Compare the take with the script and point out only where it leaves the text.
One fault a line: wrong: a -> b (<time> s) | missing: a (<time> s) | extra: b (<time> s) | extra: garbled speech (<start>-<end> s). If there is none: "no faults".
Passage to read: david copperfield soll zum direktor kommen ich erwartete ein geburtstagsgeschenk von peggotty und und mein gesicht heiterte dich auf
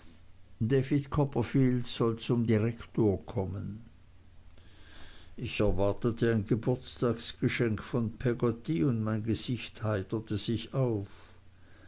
missing: und (9.0 s)
wrong: dich -> sich (10.4 s)